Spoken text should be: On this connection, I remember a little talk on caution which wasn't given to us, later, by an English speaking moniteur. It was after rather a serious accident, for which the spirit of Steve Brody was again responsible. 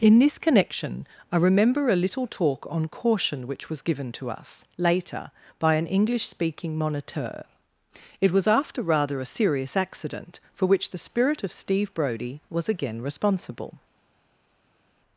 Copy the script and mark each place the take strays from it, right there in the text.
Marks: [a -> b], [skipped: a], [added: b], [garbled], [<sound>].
[On -> In] this connection, I remember a little talk on caution which [wasn't -> was] given to us, later, by an English speaking moniteur. It was after rather a serious accident, for which the spirit of Steve Brody was again responsible.